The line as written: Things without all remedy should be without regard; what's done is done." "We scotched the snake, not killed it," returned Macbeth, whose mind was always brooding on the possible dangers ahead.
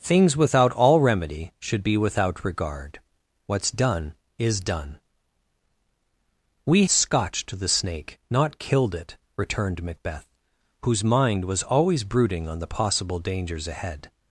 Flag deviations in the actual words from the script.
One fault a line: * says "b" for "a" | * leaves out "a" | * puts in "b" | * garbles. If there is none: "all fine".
all fine